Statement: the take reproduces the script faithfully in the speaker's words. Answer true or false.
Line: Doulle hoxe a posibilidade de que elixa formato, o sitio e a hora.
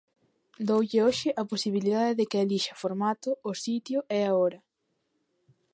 true